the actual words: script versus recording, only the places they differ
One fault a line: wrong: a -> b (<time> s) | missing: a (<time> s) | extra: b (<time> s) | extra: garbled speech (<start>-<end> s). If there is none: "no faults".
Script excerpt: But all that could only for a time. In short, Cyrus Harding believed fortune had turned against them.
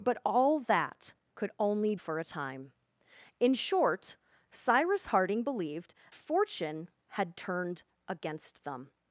no faults